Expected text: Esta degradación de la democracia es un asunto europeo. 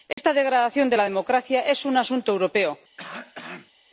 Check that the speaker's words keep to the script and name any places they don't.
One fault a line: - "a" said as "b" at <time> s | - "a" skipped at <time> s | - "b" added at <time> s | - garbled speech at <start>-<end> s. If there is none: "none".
none